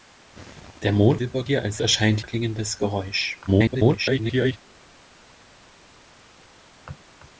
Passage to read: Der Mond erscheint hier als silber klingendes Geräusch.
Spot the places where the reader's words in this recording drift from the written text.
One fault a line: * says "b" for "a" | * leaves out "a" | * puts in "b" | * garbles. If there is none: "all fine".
* says "silber" for "erscheint"
* says "erscheint" for "silber"
* garbles